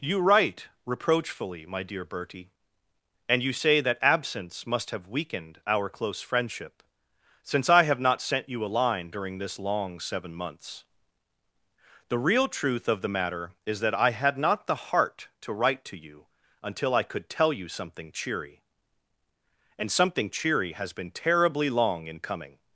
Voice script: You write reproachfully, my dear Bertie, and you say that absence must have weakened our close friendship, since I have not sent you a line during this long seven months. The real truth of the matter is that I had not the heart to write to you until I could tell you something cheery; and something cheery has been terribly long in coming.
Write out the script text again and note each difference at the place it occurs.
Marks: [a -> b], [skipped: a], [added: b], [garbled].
You write reproachfully, my dear Bertie, and you say that absence must have weakened our close friendship, since I have not sent you a line during this long seven months. The real truth of the matter is that I had not the heart to write to you until I could tell you something cheery; and something cheery has been terribly long in coming.